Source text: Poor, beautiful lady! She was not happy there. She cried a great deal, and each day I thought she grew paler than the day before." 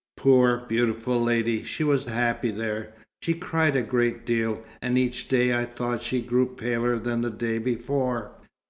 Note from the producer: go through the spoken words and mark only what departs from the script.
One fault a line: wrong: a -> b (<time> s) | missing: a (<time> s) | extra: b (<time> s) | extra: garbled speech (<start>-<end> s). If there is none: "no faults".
missing: not (2.1 s)